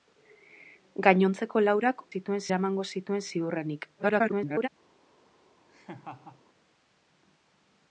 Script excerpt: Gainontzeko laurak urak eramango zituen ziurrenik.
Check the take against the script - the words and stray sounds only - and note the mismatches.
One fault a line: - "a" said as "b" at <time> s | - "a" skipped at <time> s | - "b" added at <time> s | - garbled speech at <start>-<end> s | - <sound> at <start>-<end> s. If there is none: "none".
- "urak" said as "zituen" at 2.1 s
- garbled speech at 4.0-4.7 s
- laugh at 5.7-6.4 s